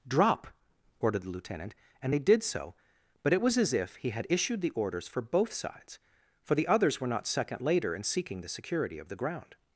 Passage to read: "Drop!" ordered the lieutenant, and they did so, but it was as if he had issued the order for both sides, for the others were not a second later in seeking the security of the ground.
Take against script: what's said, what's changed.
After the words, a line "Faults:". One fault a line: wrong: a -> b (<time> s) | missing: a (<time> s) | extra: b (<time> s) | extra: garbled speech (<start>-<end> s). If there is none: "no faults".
"Drop!" ordered the lieutenant, and they did so, but it was as if he had issued the orders for both sides, for the others were not second later in seeking the security of the ground.
Faults:
wrong: order -> orders (4.7 s)
missing: a (7.3 s)